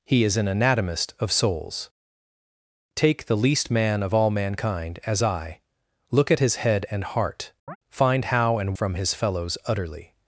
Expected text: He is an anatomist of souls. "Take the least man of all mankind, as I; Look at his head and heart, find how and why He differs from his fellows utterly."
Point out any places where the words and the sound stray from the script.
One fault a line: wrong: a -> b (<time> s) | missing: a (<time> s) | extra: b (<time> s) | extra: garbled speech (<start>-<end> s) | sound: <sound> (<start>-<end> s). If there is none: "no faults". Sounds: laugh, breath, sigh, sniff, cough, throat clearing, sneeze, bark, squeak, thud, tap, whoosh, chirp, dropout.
sound: chirp (7.7-7.8 s)
missing: why He differs (8.7 s)